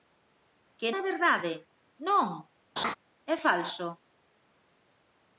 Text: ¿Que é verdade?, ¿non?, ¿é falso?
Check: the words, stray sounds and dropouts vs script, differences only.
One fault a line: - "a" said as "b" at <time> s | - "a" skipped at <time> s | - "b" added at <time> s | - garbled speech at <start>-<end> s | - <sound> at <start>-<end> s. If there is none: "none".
- laugh at 2.8-3.0 s